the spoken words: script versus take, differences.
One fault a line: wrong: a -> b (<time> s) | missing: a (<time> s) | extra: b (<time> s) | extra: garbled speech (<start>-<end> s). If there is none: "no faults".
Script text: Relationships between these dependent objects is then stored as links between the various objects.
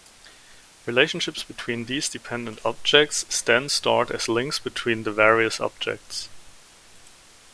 no faults